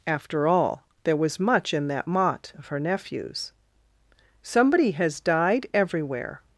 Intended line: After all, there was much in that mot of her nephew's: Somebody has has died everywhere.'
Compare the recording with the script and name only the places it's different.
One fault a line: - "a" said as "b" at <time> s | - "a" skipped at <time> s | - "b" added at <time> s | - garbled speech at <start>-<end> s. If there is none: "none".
- "has" skipped at 5.2 s